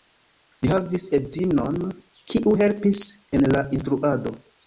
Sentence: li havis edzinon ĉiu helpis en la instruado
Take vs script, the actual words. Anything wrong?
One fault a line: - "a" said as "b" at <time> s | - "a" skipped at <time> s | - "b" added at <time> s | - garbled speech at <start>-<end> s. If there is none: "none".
- "ĉiu" said as "kiu" at 2.3 s